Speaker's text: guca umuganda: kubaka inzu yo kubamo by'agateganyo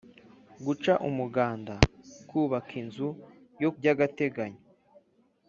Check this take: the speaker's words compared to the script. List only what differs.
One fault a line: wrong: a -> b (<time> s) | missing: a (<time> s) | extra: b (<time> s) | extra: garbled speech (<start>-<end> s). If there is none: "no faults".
missing: kubamo (3.7 s)